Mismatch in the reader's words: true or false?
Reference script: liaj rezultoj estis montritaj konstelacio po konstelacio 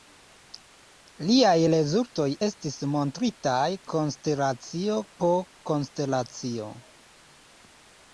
false